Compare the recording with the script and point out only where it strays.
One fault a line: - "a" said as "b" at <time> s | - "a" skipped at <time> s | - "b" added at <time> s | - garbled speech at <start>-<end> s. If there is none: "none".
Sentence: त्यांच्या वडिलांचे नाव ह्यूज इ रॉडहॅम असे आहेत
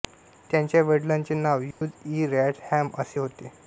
- "आहेत" said as "होते" at 3.2 s